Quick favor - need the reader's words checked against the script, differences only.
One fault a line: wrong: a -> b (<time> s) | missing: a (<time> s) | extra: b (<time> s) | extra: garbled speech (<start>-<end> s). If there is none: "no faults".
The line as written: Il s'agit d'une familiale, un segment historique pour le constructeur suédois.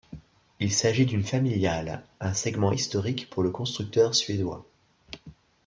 no faults